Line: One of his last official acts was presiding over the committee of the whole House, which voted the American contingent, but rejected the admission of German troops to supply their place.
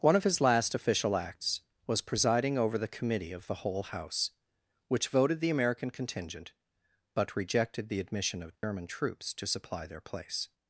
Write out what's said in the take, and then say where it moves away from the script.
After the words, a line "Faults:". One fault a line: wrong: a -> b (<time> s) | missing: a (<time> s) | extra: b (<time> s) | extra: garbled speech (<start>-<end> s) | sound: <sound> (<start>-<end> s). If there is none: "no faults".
One of his last official acts was presiding over the committee of the whole House, which voted the American contingent, but rejected the admission of German troops to supply their place.
Faults:
sound: dropout (8.6-8.6 s)